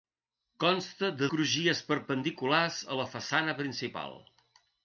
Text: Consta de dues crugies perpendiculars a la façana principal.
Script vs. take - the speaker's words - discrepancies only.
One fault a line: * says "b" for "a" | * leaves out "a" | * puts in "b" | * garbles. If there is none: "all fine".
* leaves out "dues"